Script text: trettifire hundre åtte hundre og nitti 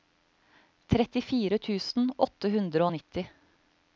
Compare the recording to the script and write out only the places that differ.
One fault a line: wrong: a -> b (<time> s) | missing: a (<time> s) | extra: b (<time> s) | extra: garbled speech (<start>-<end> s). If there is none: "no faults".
wrong: hundre -> tusen (1.7 s)